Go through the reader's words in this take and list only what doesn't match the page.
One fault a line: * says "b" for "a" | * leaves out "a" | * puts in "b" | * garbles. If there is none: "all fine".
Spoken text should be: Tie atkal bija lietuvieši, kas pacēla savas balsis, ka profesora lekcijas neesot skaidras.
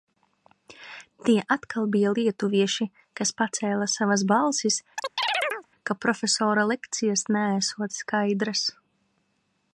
all fine